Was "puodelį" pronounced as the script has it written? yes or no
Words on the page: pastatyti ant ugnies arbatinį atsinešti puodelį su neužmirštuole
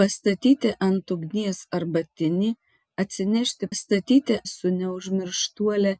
no